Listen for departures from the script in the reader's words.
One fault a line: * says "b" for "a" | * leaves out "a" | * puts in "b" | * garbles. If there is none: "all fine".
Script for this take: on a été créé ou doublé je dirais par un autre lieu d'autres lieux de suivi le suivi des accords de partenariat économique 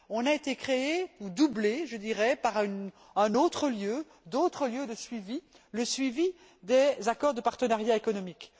all fine